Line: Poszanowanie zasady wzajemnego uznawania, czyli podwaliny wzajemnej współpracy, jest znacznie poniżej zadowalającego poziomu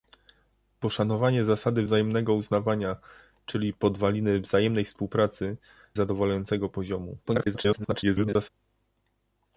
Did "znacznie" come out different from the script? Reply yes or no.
yes